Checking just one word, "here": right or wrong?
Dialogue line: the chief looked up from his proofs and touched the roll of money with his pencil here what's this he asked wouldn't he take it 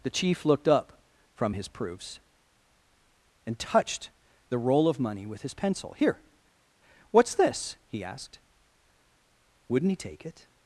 right